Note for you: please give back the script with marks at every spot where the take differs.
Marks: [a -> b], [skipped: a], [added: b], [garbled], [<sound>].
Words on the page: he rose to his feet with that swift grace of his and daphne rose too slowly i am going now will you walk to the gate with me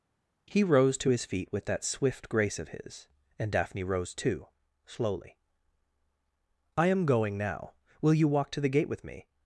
he rose to his feet with that swift grace of his and daphne rose too slowly i am going now will you walk to the gate with me